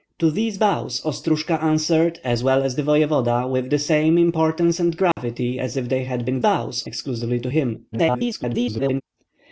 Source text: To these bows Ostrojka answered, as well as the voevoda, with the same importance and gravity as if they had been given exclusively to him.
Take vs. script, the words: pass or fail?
fail